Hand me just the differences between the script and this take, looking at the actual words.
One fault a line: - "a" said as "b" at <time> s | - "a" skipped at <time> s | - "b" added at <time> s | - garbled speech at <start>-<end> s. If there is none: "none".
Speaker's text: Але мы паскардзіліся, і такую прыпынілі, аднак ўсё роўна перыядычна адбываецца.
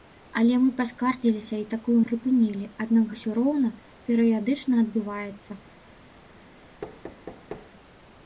none